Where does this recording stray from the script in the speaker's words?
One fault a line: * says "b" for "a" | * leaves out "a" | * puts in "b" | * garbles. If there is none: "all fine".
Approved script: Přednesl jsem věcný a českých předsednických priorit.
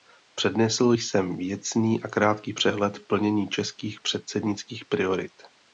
* puts in "krátký přehled plnění"